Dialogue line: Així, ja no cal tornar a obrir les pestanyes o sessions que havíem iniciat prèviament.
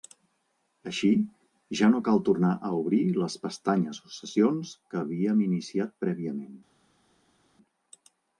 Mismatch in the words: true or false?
false